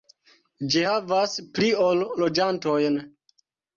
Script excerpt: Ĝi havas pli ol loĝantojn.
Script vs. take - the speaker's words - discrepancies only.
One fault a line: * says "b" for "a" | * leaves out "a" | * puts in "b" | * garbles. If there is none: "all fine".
all fine